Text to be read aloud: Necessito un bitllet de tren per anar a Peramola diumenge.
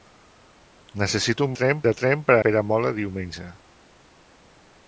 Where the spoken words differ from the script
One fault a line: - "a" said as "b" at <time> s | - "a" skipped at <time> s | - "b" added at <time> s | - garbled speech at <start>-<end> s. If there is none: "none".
- "bitllet" said as "tren" at 1.6 s
- "anar" skipped at 2.4 s